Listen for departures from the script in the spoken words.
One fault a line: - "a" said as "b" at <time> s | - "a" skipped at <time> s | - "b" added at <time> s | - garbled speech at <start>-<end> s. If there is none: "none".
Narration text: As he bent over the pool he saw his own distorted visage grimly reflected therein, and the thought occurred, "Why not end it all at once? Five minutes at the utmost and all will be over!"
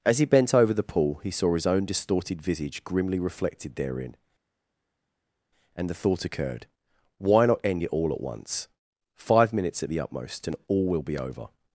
none